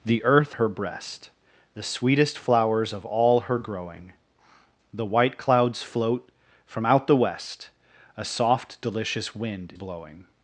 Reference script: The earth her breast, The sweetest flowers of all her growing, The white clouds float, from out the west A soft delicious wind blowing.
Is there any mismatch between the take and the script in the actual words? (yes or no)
no